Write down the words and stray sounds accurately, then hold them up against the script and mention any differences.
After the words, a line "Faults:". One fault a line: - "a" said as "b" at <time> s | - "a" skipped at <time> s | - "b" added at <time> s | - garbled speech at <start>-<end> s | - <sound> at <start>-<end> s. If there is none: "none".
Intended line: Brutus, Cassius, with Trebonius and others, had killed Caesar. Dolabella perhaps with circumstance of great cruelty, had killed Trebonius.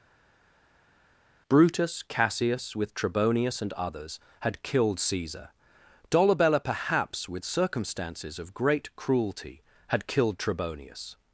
Brutus, Cassius, with Trebonius and others, had killed Caesar. Dolabella perhaps with circumstances of great cruelty, had killed Trebonius.
Faults:
- "circumstance" said as "circumstances" at 7.5 s